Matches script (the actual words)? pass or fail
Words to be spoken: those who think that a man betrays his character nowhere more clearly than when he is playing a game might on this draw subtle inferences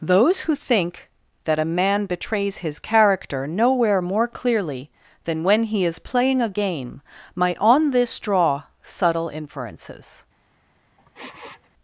pass